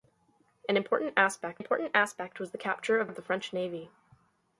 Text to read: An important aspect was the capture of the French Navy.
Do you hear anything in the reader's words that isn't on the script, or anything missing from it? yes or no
yes